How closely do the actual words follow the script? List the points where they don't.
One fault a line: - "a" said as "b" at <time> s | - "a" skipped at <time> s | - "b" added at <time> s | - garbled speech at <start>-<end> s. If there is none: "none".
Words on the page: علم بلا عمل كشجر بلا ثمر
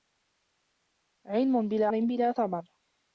- "عمل كشجر" skipped at 1.9 s